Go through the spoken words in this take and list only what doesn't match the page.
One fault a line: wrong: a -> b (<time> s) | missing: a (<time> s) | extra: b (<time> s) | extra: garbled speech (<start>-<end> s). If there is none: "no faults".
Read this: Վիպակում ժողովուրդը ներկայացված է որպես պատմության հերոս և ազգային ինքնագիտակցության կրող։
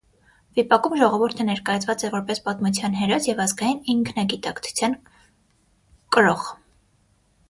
no faults